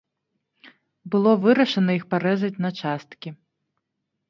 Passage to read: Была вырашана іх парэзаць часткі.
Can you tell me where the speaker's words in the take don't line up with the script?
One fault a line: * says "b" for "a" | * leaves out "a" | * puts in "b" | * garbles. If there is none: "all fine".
* says "Было" for "Была"
* puts in "на"